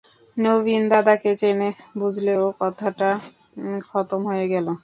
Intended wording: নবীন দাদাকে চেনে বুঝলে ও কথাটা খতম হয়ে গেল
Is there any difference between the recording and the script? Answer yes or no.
no